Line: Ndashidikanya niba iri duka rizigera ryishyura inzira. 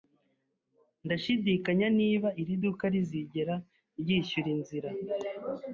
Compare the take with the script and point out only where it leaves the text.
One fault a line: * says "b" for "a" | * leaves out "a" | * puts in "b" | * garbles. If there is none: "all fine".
all fine